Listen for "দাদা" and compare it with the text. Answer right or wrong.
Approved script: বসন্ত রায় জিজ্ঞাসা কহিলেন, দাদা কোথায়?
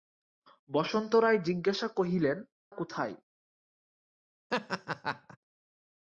wrong